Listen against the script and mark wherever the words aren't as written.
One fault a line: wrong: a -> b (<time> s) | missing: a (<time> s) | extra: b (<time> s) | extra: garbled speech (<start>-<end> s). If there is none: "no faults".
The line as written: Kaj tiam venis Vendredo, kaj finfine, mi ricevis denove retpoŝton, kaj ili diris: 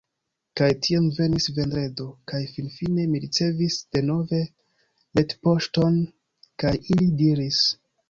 no faults